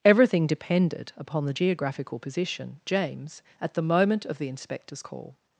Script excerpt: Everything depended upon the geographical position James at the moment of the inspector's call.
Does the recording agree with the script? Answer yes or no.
yes